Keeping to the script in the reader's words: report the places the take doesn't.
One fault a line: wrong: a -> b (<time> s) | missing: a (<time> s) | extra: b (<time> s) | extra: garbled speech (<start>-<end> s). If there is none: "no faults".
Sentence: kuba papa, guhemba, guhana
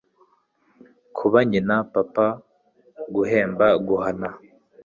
extra: nyina (1.5 s)